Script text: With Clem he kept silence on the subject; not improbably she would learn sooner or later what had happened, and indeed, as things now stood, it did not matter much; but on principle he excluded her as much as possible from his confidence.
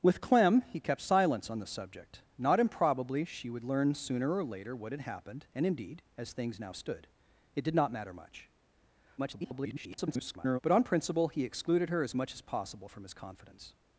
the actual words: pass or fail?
fail